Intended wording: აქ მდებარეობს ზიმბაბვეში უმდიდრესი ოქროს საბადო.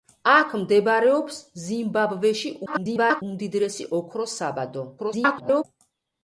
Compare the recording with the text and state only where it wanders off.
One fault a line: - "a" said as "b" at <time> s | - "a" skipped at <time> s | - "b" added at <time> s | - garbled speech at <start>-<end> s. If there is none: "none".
- garbled speech at 2.7-3.2 s
- garbled speech at 5.0-5.6 s